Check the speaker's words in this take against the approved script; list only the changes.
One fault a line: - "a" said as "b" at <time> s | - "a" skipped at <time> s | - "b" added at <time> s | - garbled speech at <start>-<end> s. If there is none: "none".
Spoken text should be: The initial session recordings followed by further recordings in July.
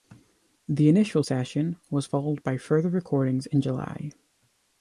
- "recordings" said as "was" at 1.9 s